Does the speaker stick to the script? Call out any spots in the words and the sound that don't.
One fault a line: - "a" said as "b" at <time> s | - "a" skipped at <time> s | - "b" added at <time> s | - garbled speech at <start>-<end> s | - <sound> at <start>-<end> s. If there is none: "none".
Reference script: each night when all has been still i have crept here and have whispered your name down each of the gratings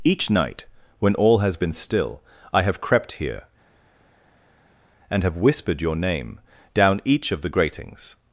none